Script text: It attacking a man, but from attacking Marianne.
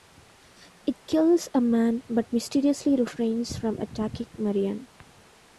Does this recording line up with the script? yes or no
no